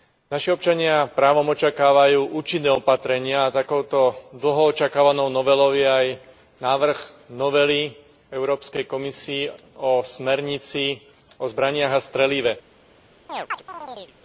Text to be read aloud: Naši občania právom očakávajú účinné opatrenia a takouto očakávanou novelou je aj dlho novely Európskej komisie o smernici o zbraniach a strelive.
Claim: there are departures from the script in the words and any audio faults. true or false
true